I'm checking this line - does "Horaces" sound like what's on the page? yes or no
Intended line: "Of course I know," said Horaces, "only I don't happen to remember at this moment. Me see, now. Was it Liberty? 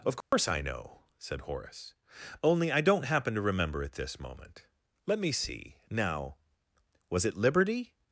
no